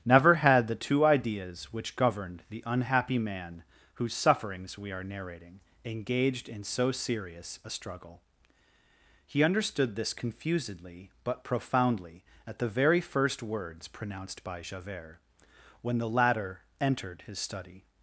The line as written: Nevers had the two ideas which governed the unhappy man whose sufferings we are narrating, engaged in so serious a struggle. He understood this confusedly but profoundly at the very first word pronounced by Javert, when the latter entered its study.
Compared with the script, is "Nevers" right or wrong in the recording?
wrong